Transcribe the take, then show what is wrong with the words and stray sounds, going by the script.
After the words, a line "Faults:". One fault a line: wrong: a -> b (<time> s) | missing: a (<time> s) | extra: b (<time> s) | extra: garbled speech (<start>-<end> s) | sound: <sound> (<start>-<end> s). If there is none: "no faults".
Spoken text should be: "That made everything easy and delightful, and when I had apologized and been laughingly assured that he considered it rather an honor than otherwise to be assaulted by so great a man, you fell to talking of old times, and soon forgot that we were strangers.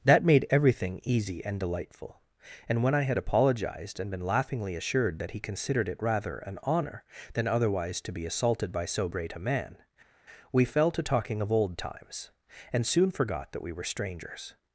"That made everything easy and delightful, and when I had apologized and been laughingly assured that he considered it rather an honor than otherwise to be assaulted by so great a man, we fell to talking of old times, and soon forgot that we were strangers.
Faults:
wrong: you -> we (10.5 s)